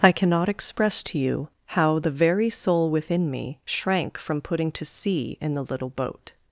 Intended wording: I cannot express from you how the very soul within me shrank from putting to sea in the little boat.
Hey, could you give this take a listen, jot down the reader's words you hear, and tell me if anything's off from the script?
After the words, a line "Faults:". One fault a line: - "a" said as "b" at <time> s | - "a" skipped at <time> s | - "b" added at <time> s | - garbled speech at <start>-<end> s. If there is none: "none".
I cannot express to you how the very soul within me shrank from putting to sea in the little boat.
Faults:
- "from" said as "to" at 1.0 s